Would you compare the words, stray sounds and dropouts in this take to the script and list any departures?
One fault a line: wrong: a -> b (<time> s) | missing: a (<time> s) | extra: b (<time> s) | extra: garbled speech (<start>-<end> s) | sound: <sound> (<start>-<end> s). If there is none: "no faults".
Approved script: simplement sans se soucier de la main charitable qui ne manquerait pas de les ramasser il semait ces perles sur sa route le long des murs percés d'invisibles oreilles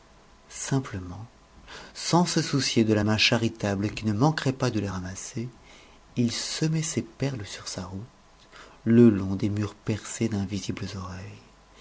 no faults